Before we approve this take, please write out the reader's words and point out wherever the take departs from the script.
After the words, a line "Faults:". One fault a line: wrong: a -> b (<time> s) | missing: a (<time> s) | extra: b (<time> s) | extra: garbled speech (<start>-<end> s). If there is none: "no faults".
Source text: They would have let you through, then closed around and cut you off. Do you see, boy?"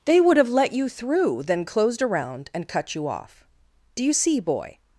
They would have let you through, then closed around and cut you off. Do you see, boy?"
Faults:
no faults